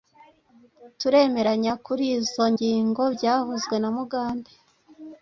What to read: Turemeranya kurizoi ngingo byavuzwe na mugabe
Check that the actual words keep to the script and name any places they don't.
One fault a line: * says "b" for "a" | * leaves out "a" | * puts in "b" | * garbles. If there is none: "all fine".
all fine